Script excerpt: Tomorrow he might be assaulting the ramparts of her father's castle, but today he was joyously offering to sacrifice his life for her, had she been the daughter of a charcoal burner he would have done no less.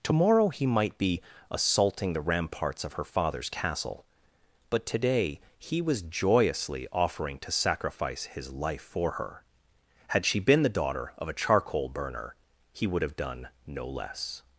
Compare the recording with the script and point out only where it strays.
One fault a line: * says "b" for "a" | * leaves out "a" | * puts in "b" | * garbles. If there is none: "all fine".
all fine